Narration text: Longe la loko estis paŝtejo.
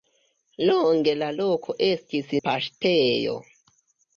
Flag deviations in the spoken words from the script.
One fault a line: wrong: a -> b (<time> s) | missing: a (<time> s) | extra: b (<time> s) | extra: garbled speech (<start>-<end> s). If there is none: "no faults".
no faults